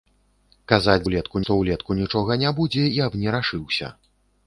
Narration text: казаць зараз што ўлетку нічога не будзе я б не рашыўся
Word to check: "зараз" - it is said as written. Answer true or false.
false